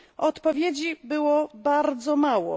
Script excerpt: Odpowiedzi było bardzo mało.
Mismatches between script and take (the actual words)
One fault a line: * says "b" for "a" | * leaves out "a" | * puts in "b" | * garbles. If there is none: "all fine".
all fine